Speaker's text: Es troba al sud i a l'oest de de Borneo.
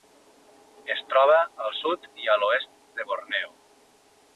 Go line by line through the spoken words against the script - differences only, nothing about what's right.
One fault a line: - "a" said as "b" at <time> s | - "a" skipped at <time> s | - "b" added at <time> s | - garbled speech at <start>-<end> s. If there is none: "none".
- "de" skipped at 3.1 s